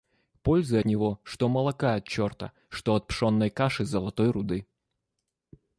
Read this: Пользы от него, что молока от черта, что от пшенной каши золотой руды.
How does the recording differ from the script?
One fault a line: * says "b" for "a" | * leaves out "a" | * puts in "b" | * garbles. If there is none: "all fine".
* leaves out "от"